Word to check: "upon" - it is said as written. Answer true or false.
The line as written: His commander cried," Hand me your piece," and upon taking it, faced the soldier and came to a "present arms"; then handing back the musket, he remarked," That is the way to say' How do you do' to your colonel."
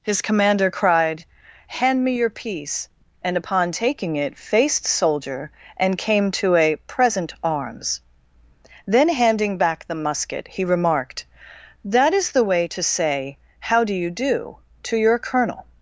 true